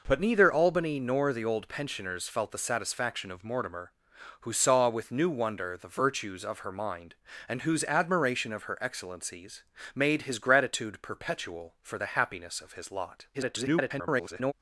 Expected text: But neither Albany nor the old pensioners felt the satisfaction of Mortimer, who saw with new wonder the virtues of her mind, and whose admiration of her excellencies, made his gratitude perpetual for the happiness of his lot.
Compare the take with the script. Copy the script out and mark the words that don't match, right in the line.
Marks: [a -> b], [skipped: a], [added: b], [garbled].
But neither Albany nor the old pensioners felt the satisfaction of Mortimer, who saw with new wonder the virtues of her mind, and whose admiration of her excellencies, made his gratitude perpetual for the happiness of his lot. [garbled]